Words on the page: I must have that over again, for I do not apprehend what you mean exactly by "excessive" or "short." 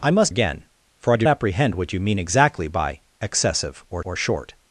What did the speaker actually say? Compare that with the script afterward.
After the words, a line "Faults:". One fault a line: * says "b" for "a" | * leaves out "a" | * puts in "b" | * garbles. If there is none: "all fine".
I must again, for I do apprehend what you mean exactly by "excessive" or or "short."
Faults:
* leaves out "have that over"
* leaves out "not"
* puts in "or"